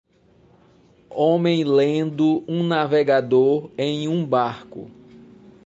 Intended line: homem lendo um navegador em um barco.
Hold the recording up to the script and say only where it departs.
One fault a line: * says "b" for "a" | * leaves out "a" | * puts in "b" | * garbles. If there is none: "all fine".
all fine